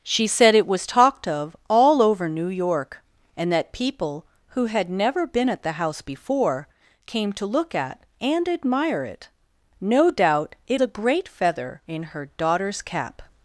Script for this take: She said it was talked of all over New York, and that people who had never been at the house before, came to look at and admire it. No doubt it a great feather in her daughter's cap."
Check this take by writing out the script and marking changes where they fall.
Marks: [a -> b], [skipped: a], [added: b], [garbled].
She said it was talked of all over New York, and that people who had never been at the house before, came to look at and admire it. No doubt it a great feather in her daughter's cap."